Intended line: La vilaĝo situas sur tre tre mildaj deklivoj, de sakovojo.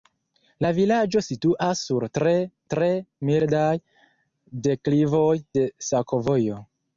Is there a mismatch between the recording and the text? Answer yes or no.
no